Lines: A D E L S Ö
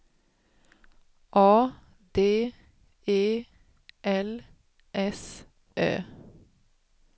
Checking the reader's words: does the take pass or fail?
pass